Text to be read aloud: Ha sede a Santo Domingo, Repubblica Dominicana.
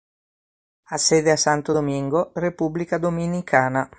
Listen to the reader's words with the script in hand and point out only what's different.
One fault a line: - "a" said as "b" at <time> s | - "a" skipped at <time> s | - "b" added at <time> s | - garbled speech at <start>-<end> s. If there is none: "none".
none